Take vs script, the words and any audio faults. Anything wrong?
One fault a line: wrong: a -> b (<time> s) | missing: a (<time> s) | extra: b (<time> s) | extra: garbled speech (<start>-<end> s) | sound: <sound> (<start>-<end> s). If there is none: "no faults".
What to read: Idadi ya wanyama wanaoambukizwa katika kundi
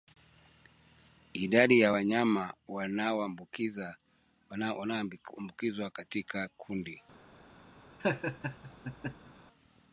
sound: laugh (8.0-9.3 s)